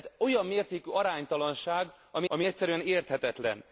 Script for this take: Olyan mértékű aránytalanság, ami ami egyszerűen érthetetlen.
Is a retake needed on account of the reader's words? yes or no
no